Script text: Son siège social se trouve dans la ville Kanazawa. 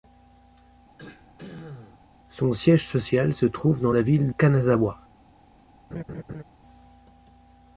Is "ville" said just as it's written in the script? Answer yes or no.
yes